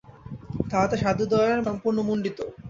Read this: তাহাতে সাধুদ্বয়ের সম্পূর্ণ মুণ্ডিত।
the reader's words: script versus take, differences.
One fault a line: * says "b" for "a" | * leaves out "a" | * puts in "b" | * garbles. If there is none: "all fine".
all fine